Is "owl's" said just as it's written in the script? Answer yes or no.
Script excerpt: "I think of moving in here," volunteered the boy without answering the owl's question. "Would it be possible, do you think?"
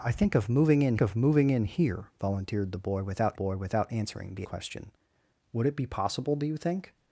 no